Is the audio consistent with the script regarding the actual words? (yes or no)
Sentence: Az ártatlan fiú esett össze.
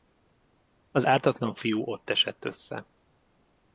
no